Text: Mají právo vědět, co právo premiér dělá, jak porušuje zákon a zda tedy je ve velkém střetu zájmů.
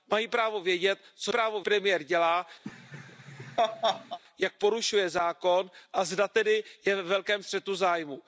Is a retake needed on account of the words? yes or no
no